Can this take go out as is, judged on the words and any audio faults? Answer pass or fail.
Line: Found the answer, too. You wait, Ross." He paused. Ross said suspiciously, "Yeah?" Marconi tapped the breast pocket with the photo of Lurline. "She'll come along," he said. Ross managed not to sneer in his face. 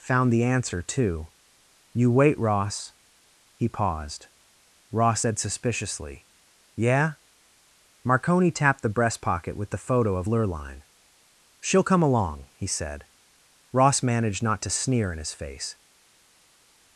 pass